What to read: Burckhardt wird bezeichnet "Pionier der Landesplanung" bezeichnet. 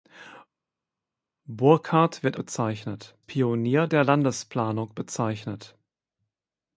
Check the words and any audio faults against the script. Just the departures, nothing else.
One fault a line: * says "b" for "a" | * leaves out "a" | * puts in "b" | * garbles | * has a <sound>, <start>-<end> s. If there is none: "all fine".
all fine